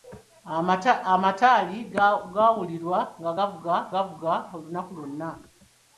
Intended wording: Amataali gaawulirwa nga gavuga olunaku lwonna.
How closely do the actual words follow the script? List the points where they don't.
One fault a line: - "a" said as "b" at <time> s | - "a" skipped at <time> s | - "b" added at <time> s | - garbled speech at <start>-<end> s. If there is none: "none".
- "gavuga" added at 3.9 s